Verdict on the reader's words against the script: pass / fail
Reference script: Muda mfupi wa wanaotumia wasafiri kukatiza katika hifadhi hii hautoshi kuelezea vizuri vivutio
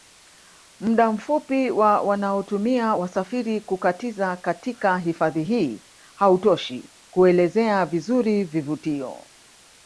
pass